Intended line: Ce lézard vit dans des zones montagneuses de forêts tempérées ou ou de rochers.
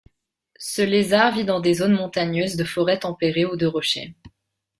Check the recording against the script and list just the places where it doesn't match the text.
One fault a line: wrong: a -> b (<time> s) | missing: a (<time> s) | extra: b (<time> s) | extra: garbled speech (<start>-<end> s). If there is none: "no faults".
missing: ou (3.6 s)